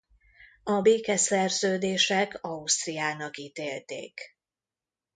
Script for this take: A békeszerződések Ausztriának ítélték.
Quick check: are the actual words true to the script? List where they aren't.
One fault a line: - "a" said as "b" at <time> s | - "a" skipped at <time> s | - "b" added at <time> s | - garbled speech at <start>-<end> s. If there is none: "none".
none